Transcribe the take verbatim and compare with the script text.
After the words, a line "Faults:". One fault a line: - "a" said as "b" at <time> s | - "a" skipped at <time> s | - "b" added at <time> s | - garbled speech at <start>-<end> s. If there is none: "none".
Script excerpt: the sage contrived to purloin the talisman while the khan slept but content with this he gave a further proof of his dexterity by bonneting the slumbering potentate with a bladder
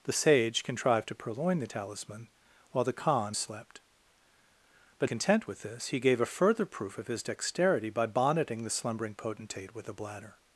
the sage contrived to purloin the talisman while the khan slept but content with this he gave a further proof of his dexterity by bonneting the slumbering potentate with a bladder
Faults:
none